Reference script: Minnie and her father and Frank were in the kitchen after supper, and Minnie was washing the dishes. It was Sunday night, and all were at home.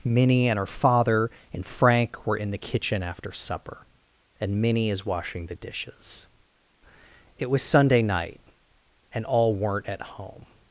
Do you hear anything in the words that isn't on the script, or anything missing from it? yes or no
yes